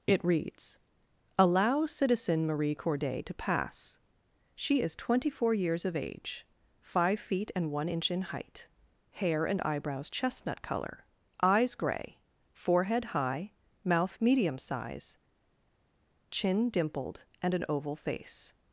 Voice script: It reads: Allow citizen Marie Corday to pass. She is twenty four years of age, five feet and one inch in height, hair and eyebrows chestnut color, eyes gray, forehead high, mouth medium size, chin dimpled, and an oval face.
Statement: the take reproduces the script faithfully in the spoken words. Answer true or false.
true